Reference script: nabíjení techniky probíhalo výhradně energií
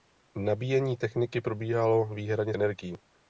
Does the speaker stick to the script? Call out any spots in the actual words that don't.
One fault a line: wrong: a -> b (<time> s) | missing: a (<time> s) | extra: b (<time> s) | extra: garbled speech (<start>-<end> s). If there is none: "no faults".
no faults